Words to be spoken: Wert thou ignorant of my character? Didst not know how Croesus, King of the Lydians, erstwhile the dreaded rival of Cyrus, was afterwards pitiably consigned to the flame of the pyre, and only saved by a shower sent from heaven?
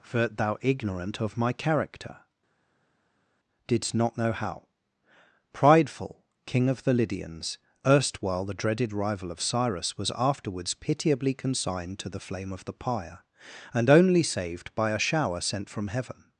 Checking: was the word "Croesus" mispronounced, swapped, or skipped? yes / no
yes